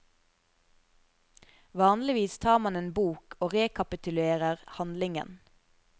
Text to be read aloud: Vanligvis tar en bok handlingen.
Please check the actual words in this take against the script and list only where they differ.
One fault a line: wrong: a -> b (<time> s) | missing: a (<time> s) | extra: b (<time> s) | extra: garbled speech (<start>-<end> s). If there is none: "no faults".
extra: man (2.6 s)
extra: og rekapitulerer (3.4 s)